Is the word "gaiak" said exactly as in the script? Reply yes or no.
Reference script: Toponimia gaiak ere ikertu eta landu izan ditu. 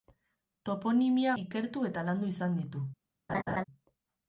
no